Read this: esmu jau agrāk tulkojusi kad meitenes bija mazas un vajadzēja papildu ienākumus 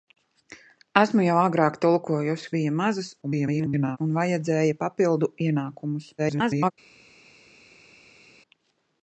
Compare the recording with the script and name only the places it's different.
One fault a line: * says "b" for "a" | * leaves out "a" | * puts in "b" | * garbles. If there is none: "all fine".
* leaves out "kad meitenes"
* garbles
* garbles